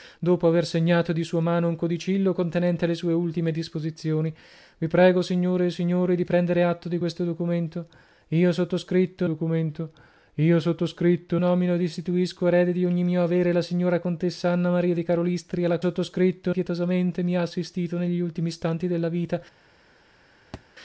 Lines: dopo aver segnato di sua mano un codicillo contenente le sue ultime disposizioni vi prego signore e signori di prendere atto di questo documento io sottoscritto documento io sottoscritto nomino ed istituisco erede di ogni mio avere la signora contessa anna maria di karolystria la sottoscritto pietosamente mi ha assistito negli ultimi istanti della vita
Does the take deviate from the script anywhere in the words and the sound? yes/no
yes